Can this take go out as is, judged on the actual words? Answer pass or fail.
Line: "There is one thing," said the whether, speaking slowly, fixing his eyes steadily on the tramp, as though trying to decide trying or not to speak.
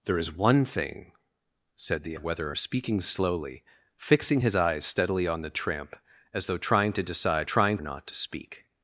pass